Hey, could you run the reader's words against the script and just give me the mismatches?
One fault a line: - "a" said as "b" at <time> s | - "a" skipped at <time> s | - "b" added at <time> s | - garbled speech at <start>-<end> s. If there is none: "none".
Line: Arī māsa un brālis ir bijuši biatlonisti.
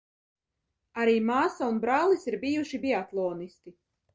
none